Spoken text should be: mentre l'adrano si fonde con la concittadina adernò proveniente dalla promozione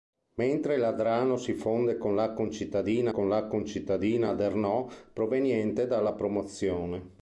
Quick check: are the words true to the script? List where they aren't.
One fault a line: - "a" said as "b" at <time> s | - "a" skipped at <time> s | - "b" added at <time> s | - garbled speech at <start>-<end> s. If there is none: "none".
- "con la concittadina" added at 3.1 s